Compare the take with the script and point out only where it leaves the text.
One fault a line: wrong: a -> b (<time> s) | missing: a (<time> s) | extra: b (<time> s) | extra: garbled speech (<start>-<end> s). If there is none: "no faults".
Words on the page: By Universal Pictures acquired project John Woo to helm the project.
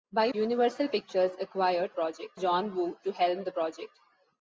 no faults